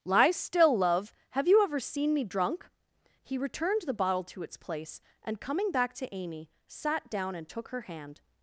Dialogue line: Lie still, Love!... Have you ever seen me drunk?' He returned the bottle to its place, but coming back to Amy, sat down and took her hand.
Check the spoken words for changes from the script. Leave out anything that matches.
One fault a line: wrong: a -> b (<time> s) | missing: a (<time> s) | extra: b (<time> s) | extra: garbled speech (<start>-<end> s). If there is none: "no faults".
wrong: but -> and (5.2 s)